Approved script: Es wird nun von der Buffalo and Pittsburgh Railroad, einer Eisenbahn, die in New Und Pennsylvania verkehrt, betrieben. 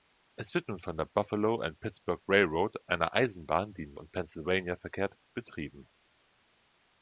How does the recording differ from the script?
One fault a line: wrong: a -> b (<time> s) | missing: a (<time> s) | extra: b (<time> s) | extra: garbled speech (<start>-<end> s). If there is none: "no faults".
no faults